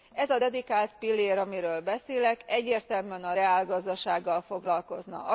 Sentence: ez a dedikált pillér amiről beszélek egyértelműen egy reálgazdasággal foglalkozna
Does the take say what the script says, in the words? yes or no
no